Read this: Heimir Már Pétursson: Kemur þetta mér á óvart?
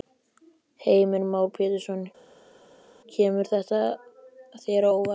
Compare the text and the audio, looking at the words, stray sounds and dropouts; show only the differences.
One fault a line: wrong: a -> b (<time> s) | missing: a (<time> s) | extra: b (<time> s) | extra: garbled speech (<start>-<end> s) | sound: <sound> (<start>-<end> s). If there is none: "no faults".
wrong: mér -> þér (4.6 s)